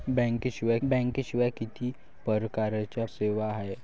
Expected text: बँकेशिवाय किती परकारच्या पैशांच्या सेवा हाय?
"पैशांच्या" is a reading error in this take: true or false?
true